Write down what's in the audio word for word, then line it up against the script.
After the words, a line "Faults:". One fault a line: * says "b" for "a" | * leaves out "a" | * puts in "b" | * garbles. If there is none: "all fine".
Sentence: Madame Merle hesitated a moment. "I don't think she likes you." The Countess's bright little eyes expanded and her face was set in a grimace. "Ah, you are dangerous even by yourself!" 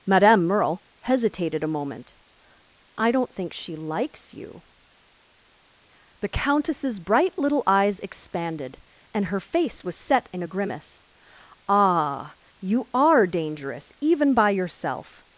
Madame Merle hesitated a moment. "I don't think she likes you." The Countess's bright little eyes expanded and her face was set in a grimace. "Ah, you are dangerous even by yourself!"
Faults:
all fine